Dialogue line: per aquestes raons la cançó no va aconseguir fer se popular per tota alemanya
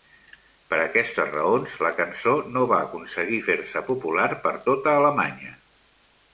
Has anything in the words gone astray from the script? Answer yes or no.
no